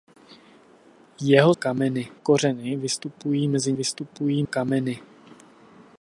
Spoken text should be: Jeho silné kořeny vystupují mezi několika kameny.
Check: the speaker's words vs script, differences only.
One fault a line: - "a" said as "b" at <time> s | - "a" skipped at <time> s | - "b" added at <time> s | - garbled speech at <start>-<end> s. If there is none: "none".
- "silné" said as "kameny" at 1.5 s
- "několika" said as "vystupují" at 3.7 s